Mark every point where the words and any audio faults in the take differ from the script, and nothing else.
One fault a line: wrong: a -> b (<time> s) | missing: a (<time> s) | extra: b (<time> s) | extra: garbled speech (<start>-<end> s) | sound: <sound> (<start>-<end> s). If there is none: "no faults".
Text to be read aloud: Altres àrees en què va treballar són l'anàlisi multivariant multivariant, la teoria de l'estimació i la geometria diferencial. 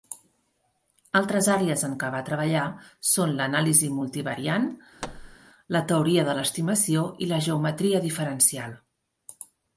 missing: multivariant (4.7 s)
sound: thud (5.0-5.4 s)